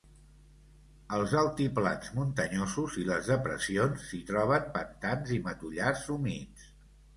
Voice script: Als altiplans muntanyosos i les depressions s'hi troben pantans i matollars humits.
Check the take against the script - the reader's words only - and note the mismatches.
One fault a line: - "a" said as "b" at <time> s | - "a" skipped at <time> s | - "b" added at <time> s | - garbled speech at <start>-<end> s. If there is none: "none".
none